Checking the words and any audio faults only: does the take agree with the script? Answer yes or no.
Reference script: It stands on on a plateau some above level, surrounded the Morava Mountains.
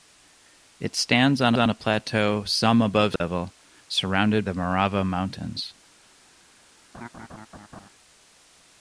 no